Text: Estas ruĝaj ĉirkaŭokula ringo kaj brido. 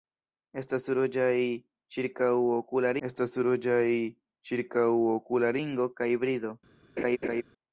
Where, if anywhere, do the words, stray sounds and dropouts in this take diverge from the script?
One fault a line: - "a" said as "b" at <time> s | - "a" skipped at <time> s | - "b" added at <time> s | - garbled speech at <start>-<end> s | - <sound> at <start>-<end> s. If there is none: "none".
- "estas ruĝaj ĉirkaŭokula" added at 3.1 s
- laugh at 7.0-7.4 s